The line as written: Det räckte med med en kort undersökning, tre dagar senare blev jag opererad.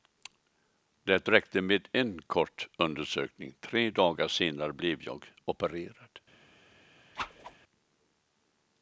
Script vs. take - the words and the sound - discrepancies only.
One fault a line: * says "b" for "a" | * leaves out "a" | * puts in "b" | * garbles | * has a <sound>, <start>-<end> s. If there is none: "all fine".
* leaves out "med"
* has a whoosh, 7.2-7.6 s